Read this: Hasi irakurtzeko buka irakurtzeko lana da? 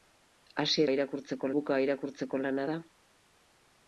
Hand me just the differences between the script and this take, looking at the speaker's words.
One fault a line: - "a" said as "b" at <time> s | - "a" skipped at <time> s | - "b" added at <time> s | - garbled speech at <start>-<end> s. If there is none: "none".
none